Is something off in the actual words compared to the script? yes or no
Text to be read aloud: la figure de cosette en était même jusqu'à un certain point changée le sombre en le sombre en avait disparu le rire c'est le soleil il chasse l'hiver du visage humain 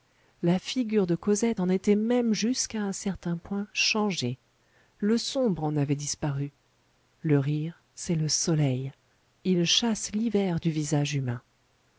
yes